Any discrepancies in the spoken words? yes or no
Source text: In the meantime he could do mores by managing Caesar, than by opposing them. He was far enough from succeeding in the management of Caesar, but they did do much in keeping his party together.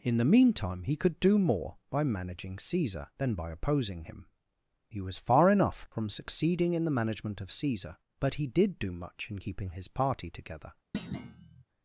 yes